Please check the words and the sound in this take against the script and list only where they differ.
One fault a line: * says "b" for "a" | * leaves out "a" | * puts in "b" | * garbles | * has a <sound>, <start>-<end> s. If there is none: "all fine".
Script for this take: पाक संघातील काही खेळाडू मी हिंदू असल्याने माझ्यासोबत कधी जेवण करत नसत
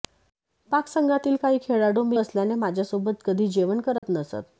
* leaves out "हिंदू"
* has a dropout, 4.0-4.0 s